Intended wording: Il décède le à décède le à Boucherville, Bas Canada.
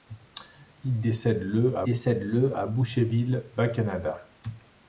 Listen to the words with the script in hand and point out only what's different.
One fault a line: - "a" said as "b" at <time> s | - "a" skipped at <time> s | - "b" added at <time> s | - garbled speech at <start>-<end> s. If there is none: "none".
none